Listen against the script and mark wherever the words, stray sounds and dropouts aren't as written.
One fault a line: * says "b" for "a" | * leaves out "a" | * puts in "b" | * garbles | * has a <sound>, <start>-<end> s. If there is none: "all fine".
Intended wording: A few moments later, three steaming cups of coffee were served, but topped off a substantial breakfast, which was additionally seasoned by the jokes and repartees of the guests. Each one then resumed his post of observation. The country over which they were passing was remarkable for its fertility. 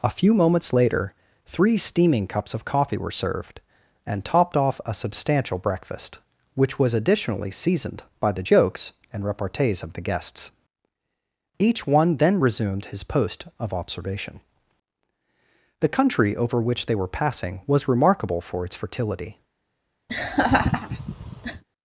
* says "and" for "but"
* has a laugh, 20.1-21.6 s